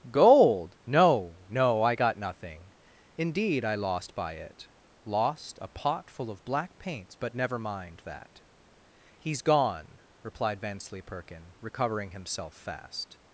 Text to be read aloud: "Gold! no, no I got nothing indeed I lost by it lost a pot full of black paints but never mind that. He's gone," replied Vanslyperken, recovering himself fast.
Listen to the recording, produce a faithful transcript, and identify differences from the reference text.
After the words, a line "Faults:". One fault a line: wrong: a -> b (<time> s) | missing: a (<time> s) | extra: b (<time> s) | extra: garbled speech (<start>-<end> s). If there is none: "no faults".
"Gold! no, no I got nothing indeed I lost by it lost a pot full of black paints but never mind that. He's gone," replied Vanslyperken, recovering himself fast.
Faults:
no faults